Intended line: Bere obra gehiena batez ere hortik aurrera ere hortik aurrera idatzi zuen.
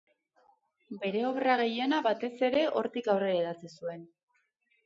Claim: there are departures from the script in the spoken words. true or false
true